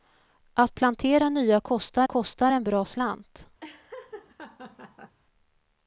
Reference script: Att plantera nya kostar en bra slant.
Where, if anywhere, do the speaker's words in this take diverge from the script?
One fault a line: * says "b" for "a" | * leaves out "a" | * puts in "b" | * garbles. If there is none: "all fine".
* puts in "kostar"